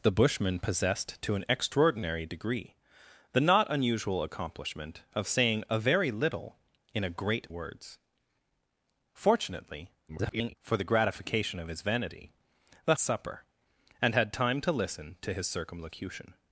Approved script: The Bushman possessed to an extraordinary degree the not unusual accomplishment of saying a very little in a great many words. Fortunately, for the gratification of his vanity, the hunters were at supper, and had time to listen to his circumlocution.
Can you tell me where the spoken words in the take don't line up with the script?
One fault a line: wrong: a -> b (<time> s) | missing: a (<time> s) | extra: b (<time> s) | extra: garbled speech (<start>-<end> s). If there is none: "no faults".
missing: many (7.5 s)
extra: garbled speech (10.1-10.6 s)
missing: hunters were at (12.9 s)